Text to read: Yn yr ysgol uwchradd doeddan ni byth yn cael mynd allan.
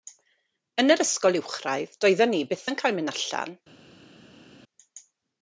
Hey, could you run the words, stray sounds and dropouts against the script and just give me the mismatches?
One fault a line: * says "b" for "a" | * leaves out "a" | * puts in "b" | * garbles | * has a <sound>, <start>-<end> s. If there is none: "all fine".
all fine